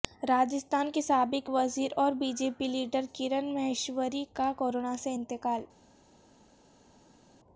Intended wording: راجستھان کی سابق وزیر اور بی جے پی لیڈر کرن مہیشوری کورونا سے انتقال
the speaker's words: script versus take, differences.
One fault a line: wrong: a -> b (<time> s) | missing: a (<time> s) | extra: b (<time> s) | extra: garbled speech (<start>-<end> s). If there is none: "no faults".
extra: کا (4.3 s)